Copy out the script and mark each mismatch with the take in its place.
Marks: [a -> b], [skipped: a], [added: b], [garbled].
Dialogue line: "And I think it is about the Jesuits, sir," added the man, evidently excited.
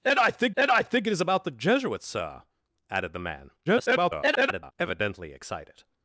"And I think [added: and I think] it is about the Jesuits, sir," added the man, [garbled] evidently excited.